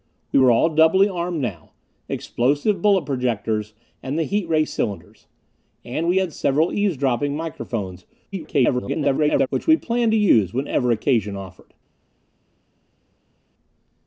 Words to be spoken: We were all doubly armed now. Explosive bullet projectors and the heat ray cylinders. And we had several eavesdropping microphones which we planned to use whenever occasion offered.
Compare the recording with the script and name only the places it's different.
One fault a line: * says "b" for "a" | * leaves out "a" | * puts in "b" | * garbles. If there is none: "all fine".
* garbles